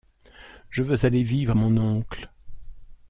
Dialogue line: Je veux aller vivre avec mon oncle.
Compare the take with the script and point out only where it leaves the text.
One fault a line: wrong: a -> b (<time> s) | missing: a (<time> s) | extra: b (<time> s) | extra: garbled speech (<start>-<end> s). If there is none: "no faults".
missing: avec (1.6 s)